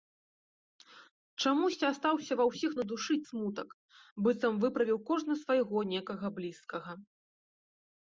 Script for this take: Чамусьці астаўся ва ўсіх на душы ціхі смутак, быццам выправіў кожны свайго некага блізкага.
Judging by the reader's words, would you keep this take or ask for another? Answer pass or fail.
fail